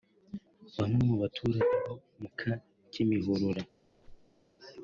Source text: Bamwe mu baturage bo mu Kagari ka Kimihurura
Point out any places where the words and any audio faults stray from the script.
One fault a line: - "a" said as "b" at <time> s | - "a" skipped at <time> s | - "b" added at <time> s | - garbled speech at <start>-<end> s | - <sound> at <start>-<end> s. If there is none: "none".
- "Kagari" skipped at 2.3 s
- squeak at 3.8-4.4 s